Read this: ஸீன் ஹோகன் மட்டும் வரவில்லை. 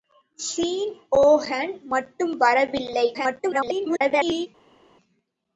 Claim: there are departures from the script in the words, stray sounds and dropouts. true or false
true